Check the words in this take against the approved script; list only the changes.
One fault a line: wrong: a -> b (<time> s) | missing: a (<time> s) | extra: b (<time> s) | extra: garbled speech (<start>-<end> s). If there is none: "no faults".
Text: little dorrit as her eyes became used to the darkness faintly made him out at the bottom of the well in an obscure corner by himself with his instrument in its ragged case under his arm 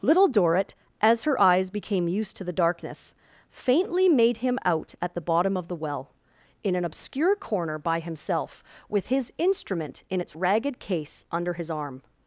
no faults